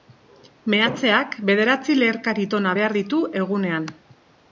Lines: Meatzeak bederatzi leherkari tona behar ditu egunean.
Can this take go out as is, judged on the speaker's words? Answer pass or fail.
pass